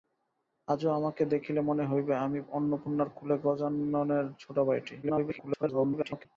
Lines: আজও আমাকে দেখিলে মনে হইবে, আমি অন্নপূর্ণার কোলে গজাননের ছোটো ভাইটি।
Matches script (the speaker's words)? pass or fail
fail